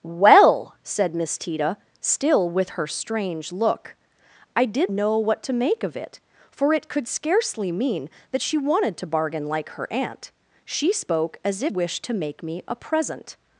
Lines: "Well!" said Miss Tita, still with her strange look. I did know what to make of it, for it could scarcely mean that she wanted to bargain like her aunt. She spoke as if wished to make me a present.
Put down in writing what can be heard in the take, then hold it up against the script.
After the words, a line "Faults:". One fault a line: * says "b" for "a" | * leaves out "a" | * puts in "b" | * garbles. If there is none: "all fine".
"Well!" said Miss Tita, still with her strange look. I did know what to make of it, for it could scarcely mean that she wanted to bargain like her aunt. She spoke as if wished to make me a present.
Faults:
all fine